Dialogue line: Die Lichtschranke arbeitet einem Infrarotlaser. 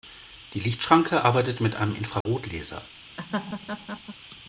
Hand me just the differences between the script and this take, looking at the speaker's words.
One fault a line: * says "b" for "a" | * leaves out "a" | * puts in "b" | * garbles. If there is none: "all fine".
* puts in "mit"